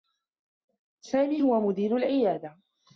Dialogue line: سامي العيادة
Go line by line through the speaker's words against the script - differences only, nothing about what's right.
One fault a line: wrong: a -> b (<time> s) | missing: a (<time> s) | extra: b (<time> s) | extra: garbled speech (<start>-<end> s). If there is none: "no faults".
extra: هو مدير (1.4 s)